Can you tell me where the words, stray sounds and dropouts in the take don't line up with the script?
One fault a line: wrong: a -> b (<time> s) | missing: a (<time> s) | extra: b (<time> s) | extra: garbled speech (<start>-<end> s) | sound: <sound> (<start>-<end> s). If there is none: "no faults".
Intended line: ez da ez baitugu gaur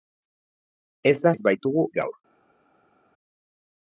no faults